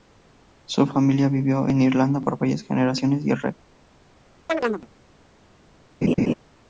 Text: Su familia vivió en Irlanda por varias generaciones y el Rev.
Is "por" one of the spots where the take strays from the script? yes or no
no